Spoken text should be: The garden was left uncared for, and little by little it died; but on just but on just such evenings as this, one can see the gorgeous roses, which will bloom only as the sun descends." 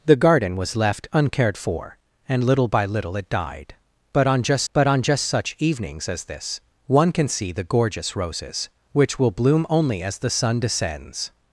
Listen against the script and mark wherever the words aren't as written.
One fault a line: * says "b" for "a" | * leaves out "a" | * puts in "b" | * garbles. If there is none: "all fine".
all fine